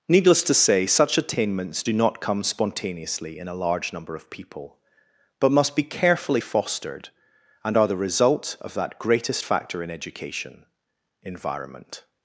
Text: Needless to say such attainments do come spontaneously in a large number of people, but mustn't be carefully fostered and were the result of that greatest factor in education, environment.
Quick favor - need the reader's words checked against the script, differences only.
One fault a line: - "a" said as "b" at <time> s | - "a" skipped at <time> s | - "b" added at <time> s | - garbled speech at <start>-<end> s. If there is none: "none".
- "not" added at 1.9 s
- "mustn't" said as "must" at 5.5 s
- "were" said as "are" at 7.8 s